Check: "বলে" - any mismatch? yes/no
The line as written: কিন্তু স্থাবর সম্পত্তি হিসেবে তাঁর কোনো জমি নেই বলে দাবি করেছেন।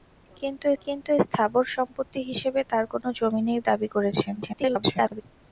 yes